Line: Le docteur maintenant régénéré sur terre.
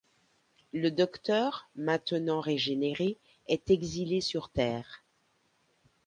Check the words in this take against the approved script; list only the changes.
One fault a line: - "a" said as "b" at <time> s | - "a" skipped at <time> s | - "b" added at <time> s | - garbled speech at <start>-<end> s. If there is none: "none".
- "est exilé" added at 3.5 s